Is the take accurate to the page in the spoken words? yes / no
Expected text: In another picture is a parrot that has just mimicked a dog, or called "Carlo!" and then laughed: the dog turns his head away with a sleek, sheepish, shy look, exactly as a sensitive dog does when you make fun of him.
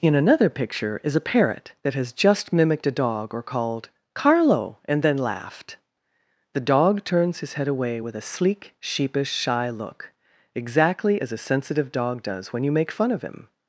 yes